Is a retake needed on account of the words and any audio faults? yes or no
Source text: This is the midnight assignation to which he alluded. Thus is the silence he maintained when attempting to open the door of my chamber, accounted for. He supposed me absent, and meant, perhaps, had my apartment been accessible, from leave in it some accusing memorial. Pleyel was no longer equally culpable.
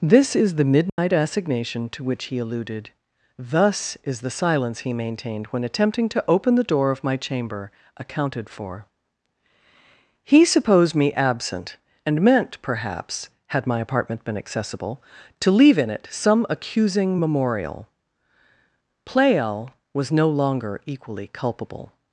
yes